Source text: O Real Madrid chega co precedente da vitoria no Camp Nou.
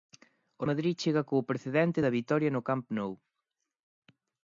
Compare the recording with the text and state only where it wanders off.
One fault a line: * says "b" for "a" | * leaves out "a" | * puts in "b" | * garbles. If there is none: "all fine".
* leaves out "Real"